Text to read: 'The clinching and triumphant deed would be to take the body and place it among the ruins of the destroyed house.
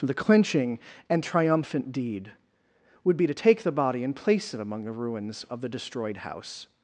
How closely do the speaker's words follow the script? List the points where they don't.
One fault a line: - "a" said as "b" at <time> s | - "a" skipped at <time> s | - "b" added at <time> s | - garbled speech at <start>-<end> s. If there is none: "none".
none